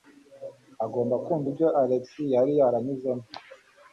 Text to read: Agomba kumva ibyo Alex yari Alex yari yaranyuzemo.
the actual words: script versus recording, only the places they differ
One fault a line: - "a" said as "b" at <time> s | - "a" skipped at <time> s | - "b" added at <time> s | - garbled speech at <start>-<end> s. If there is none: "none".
- "Alex yari" skipped at 2.5 s